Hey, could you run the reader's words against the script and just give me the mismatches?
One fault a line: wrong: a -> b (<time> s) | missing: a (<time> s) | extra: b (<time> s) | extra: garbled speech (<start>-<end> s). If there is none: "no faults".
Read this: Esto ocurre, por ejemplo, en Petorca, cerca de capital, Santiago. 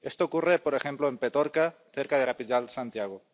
no faults